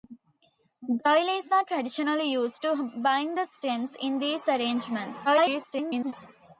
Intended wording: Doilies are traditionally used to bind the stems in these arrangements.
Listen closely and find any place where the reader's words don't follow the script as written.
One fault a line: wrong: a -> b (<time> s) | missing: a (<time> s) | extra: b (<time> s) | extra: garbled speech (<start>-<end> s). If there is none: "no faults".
extra: garbled speech (5.2-6.1 s)